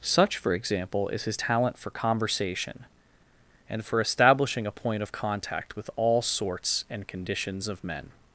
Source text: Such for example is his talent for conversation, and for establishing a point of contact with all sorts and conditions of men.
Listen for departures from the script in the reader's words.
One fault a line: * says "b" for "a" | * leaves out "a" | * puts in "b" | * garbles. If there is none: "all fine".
all fine